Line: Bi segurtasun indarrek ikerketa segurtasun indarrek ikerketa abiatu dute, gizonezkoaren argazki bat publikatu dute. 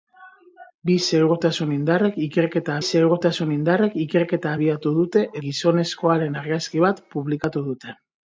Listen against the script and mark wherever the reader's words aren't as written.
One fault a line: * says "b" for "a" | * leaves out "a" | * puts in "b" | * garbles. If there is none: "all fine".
all fine